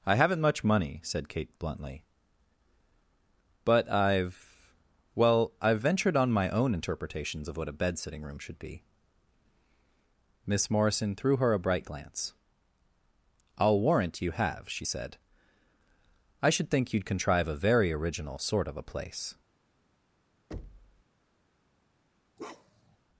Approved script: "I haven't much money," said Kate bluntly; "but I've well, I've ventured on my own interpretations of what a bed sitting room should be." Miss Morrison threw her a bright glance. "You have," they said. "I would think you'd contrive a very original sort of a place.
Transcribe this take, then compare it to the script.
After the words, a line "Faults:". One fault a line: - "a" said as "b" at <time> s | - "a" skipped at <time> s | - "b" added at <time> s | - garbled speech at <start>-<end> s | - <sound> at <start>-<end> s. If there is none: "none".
"I haven't much money," said Kate bluntly; "but I've well, I've ventured on my own interpretations of what a bed sitting room should be." Miss Morrison threw her a bright glance. "I'll warrant you have," she said. "I should think you'd contrive a very original sort of a place.
Faults:
- "I'll warrant" added at 13.6 s
- "they" said as "she" at 14.7 s
- "would" said as "should" at 16.5 s
- thud at 20.5-21.0 s
- bark at 22.4-23.0 s